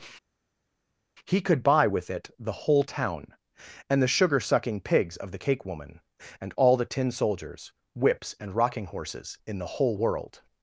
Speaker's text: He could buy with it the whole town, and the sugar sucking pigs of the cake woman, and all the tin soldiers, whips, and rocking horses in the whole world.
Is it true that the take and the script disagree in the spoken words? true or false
false